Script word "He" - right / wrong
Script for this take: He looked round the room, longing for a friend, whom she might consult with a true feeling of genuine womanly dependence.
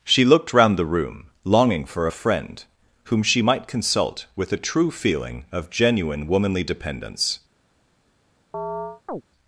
wrong